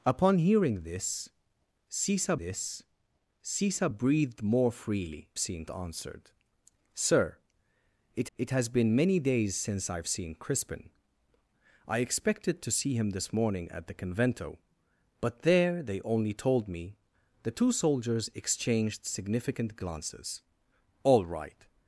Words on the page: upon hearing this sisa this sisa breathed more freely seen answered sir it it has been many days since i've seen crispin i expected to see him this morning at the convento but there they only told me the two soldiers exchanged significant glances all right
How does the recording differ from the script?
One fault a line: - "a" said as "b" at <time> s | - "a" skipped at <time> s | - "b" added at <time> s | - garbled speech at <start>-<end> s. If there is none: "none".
none